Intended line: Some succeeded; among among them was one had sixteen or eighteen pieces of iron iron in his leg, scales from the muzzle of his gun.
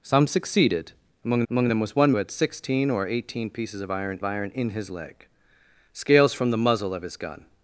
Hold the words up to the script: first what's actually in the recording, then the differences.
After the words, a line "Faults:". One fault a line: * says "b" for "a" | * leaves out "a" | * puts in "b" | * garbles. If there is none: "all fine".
Some succeeded; among among them was one had sixteen or eighteen pieces of iron iron in his leg, scales from the muzzle of his gun.
Faults:
all fine